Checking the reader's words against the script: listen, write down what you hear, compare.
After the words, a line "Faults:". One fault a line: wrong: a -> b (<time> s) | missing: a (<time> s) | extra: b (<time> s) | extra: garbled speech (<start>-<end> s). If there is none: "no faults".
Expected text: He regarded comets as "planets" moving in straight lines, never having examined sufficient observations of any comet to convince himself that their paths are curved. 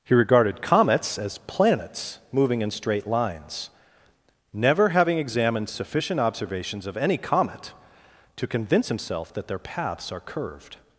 He regarded comets as "planets" moving in straight lines, never having examined sufficient observations of any comet to convince himself that their paths are curved.
Faults:
no faults